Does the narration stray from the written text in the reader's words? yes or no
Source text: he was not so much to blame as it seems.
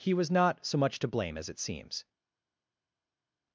no